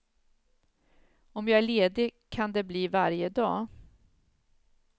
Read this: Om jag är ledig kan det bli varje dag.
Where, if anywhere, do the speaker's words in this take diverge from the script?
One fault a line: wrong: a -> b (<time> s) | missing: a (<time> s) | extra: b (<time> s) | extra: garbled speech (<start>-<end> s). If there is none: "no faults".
no faults